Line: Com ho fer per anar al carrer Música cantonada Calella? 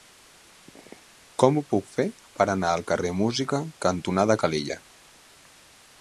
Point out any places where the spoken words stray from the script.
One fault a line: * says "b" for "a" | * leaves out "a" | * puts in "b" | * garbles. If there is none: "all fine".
* puts in "puc"